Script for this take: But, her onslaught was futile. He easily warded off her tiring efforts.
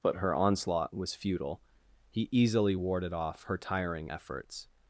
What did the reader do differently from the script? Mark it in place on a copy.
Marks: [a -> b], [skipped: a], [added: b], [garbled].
But, her onslaught was futile. He easily warded off her tiring efforts.